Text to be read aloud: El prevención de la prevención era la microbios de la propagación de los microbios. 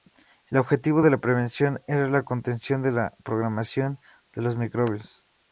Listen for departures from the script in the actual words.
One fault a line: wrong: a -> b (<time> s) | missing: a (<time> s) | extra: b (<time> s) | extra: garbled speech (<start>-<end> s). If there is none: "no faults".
wrong: prevención -> objetivo (0.5 s)
wrong: microbios -> contención (2.2 s)